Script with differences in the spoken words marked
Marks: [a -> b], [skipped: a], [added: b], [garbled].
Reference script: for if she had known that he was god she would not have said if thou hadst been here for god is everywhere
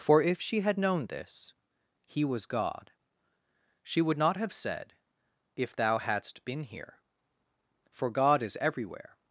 for if she had known [that -> this] he was god she would not have said if thou hadst been here for god is everywhere